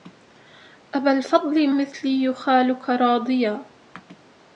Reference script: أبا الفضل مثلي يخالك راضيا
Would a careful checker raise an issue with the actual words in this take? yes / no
no